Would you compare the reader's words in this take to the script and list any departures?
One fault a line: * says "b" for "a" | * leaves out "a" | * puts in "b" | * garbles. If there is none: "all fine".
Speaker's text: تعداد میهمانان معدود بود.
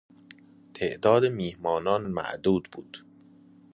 all fine